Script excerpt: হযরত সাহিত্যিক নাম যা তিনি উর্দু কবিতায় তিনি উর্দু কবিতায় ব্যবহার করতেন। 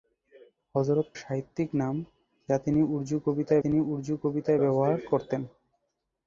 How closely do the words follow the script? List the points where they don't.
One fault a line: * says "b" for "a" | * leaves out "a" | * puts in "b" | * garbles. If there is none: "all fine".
all fine